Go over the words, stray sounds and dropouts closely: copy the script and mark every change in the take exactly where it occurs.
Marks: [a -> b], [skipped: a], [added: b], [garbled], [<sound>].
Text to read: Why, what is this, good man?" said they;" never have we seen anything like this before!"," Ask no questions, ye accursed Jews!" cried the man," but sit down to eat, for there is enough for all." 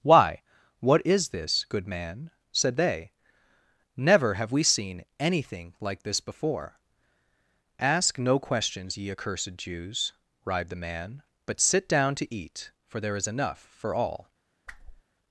Why, what is this, good man?" said they;" never have we seen anything like this before!"," Ask no questions, ye accursed Jews!" [cried -> writhed] the man," but sit down to eat, for there is enough for all." [whoosh]